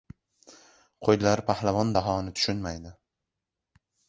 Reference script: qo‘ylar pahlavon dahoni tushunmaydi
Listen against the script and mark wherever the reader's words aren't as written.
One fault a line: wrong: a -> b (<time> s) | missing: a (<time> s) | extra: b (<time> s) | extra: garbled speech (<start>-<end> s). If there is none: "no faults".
no faults